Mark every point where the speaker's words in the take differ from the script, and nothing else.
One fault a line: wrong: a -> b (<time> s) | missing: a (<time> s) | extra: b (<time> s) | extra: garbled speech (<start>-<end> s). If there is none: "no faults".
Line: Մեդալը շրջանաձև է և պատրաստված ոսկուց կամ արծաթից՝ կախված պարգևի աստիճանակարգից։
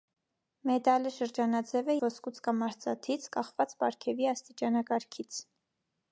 missing: և պատրաստված (2.0 s)